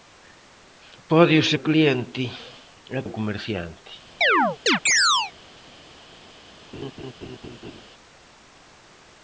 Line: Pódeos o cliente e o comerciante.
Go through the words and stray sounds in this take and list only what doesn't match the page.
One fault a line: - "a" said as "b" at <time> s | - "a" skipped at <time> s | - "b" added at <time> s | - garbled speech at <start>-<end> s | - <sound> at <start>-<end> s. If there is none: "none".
- chirp at 4.2-5.3 s
- laugh at 6.7-7.8 s